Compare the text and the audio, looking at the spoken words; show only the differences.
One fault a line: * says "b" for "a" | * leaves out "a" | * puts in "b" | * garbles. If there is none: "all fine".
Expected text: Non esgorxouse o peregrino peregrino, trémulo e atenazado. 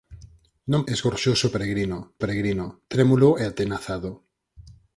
all fine